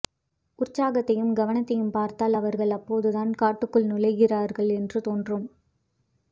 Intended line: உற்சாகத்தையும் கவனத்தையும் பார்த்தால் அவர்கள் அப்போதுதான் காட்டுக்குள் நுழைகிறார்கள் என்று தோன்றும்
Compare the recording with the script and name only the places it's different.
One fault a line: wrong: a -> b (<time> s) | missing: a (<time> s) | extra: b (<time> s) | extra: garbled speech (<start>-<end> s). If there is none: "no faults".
no faults